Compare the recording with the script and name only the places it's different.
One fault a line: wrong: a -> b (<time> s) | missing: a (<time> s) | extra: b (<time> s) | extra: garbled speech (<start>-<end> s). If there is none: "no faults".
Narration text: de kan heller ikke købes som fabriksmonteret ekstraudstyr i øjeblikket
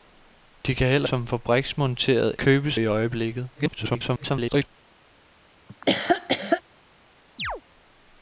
missing: ikke købes (1.1 s)
wrong: ekstraudstyr -> købes (2.4 s)
extra: garbled speech (3.5-4.7 s)